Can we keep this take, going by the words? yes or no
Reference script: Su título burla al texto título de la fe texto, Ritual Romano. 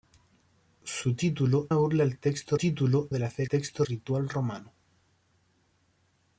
yes